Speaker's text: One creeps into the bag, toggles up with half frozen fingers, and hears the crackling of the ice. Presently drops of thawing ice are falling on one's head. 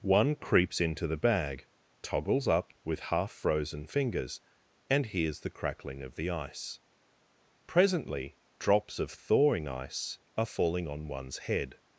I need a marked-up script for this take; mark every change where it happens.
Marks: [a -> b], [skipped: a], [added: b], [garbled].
One creeps into the bag, toggles up with half frozen fingers, and hears the crackling of the ice. Presently drops of thawing ice are falling on one's head.